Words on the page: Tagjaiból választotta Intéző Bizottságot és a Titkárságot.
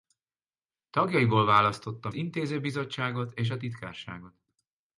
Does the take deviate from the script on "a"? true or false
false